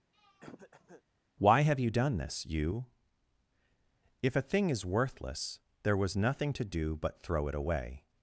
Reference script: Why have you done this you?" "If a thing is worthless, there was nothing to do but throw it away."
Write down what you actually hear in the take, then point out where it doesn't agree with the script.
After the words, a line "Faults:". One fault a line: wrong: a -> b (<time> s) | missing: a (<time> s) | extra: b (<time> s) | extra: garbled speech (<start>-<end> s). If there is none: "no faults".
Why have you done this you?" "If a thing is worthless, there was nothing to do but throw it away."
Faults:
no faults